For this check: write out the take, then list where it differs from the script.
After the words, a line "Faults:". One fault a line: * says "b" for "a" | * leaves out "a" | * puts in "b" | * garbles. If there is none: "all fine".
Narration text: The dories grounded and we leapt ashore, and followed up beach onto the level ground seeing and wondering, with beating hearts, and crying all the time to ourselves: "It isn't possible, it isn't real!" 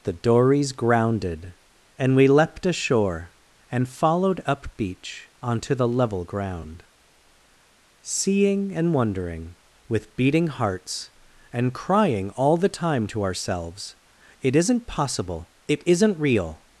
The dories grounded and we leapt ashore, and followed up beach onto the level ground seeing and wondering, with beating hearts, and crying all the time to ourselves: "It isn't possible, it isn't real!"
Faults:
all fine